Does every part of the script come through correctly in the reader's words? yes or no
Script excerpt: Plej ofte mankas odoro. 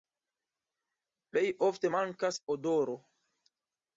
yes